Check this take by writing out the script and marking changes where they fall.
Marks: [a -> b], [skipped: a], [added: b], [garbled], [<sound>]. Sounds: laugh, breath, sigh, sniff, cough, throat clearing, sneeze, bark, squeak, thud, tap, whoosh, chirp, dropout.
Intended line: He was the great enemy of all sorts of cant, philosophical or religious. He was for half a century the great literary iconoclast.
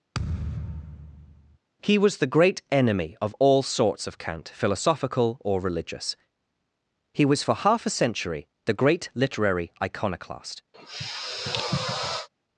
[thud] He was the great enemy of all sorts of cant, philosophical or religious. He was for half a century the great literary iconoclast. [sniff]